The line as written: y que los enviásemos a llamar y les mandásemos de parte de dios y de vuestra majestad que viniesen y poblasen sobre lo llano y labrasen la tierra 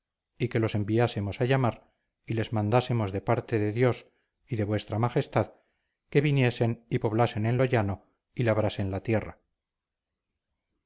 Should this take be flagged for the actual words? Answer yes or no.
yes